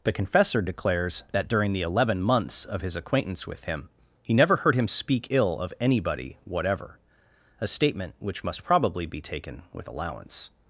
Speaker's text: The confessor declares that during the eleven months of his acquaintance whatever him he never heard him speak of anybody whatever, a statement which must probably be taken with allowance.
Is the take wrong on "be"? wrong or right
right